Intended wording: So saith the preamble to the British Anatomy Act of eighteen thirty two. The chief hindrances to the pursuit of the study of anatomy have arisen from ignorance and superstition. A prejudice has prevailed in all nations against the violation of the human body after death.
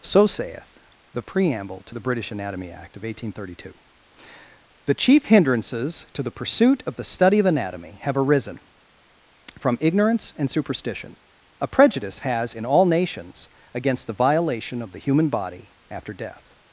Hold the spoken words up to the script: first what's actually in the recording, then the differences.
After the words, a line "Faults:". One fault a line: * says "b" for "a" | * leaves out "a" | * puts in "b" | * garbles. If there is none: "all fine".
So saith the preamble to the British Anatomy Act of eighteen thirty two. The chief hindrances to the pursuit of the study of anatomy have arisen from ignorance and superstition. A prejudice has in all nations against the violation of the human body after death.
Faults:
* leaves out "prevailed"